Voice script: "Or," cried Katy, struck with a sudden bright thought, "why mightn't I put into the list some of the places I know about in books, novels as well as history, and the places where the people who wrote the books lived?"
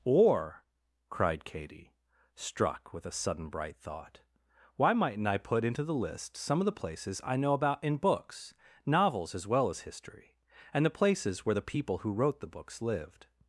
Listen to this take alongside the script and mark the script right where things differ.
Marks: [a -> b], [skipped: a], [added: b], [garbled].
"Or," cried Katy, struck with a sudden bright thought, "why mightn't I put into the list some of the places I know about in books, novels as well as history, and the places where the people who wrote the books lived?"